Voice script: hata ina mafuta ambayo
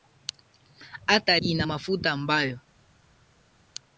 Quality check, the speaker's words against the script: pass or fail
pass